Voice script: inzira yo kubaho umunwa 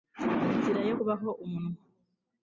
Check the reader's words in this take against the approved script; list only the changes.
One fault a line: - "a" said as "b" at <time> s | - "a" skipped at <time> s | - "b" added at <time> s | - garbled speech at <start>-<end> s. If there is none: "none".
none